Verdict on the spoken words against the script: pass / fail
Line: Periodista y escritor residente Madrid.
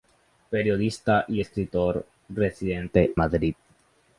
pass